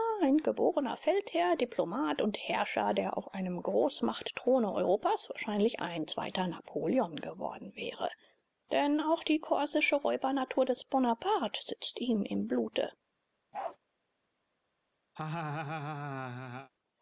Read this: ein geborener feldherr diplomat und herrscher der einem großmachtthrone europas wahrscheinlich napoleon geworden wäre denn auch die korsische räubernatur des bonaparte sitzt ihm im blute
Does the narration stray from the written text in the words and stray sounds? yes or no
yes